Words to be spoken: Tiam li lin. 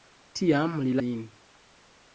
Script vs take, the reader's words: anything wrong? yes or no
no